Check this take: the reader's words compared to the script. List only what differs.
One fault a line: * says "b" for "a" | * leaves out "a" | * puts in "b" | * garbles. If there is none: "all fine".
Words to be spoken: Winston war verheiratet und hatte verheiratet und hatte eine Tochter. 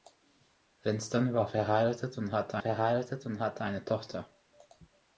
all fine